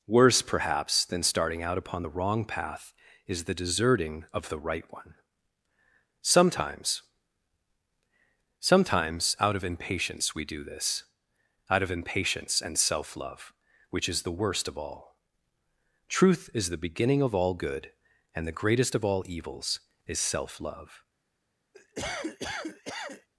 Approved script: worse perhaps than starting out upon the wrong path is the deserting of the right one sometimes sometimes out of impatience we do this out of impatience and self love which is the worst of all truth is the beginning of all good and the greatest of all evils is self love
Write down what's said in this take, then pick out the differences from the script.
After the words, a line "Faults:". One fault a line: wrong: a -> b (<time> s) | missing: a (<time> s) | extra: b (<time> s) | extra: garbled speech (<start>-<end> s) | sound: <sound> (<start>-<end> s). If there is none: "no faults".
worse perhaps than starting out upon the wrong path is the deserting of the right one sometimes sometimes out of impatience we do this out of impatience and self love which is the worst of all truth is the beginning of all good and the greatest of all evils is self love
Faults:
sound: cough (21.7-23.3 s)